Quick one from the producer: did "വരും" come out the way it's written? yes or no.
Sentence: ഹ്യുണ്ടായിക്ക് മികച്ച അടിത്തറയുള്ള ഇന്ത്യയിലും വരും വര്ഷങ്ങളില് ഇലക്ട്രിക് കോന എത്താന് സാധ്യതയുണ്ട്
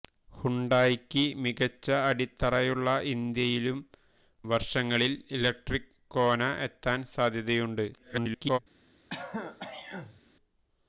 no